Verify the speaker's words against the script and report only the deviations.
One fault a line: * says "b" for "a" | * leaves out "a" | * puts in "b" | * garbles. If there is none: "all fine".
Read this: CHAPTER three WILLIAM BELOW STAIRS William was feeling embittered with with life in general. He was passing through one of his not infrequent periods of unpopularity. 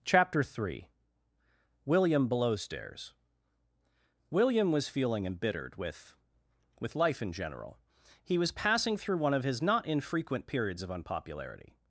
all fine